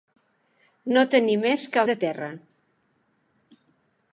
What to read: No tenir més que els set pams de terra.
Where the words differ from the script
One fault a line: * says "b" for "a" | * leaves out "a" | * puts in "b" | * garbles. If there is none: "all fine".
* leaves out "els set pams"